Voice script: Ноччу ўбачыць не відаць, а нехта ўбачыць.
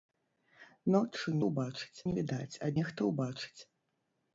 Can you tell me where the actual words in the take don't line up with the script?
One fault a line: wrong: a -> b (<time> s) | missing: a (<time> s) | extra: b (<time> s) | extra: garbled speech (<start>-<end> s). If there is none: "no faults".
no faults